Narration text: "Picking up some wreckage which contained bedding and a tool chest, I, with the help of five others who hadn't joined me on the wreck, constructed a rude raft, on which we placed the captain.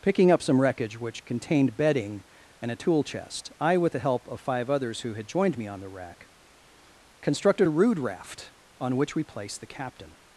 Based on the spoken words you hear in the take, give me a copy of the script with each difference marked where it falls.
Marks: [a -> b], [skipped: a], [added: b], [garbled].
"Picking up some wreckage which contained bedding and a tool chest, I, with the help of five others who [hadn't -> had] joined me on the wreck, constructed a rude raft, on which we placed the captain.